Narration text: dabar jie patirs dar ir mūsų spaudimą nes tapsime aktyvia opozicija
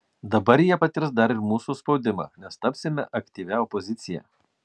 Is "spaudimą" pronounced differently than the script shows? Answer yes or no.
no